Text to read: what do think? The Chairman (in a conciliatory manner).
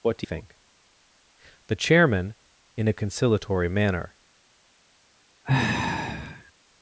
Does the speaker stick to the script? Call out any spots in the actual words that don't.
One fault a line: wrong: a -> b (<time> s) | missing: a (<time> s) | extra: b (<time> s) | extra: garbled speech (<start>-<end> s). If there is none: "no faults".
no faults